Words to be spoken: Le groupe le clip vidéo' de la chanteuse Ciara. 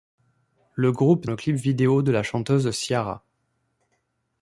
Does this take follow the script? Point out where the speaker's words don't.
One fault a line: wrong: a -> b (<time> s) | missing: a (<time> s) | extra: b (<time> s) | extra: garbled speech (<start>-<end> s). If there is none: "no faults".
no faults